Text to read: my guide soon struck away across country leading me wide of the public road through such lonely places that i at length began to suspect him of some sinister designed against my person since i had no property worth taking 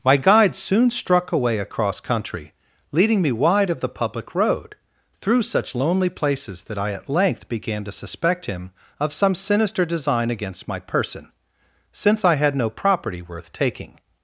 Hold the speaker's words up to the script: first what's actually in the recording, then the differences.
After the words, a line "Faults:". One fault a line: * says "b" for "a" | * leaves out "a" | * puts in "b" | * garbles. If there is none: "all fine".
my guide soon struck away across country leading me wide of the public road through such lonely places that i at length began to suspect him of some sinister design against my person since i had no property worth taking
Faults:
* says "design" for "designed"